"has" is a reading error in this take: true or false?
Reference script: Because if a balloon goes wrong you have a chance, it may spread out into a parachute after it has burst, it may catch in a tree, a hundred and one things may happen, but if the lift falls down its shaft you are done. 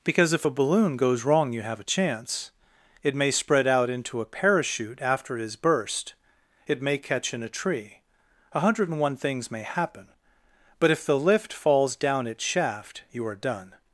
true